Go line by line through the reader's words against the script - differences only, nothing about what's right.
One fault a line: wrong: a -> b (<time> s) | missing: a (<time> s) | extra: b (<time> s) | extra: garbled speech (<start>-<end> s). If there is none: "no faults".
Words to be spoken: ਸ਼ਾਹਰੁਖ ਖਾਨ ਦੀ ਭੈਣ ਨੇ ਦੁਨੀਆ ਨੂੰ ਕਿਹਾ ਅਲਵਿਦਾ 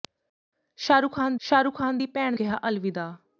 extra: ਸ਼ਾਹਰੁਖ ਖਾਨ (1.4 s)
missing: ਨੇ ਦੁਨੀਆ ਨੂੰ (2.4 s)